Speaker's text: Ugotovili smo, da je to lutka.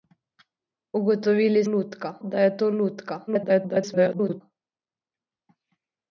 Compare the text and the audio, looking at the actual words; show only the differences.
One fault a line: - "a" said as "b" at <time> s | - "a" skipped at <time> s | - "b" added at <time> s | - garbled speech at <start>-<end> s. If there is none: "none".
- "smo" said as "lutka" at 1.6 s
- garbled speech at 3.3-4.4 s